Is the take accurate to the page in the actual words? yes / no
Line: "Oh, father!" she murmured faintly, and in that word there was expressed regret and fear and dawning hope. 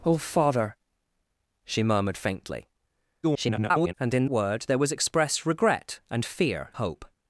no